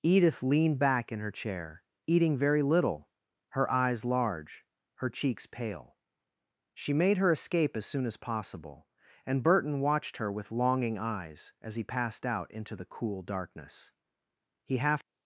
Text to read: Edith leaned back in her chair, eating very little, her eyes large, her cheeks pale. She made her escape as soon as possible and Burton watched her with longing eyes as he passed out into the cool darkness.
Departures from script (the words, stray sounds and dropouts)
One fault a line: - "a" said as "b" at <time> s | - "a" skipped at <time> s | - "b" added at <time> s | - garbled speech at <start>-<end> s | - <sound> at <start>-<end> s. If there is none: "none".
- "He half" added at 14.6 s